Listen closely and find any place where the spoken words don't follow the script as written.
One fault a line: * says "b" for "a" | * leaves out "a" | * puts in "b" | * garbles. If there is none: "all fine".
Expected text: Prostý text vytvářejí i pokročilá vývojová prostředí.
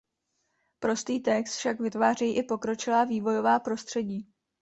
* puts in "však"